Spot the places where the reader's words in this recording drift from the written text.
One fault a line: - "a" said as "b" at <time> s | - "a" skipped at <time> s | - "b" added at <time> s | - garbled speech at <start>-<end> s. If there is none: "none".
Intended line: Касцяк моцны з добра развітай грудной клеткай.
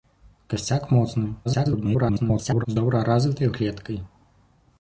- garbled speech at 1.4-2.7 s
- "грудной" skipped at 3.5 s